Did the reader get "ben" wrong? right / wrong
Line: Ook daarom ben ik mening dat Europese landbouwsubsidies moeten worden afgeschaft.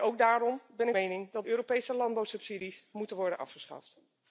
right